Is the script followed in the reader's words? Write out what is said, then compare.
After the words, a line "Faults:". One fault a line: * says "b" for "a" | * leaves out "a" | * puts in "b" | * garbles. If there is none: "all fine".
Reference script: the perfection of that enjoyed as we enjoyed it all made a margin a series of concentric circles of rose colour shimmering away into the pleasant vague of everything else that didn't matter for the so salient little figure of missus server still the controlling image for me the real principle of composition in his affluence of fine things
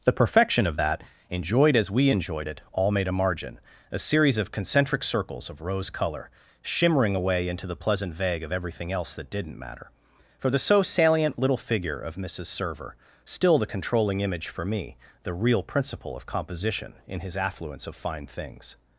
the perfection of that enjoyed as we enjoyed it all made a margin a series of concentric circles of rose colour shimmering away into the pleasant vague of everything else that didn't matter for the so salient little figure of missus server still the controlling image for me the real principle of composition in his affluence of fine things
Faults:
all fine